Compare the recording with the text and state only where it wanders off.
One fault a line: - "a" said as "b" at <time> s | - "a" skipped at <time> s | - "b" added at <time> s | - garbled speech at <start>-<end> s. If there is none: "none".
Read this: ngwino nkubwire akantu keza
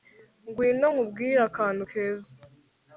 none